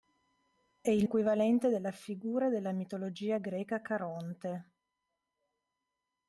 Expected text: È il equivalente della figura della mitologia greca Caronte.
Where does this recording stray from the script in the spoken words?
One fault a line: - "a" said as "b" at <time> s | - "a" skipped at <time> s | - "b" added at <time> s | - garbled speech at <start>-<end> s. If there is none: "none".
none